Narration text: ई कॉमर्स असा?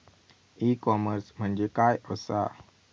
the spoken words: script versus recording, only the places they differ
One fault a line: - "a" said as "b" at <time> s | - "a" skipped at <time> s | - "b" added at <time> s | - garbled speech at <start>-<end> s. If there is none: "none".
- "म्हणजे काय" added at 1.4 s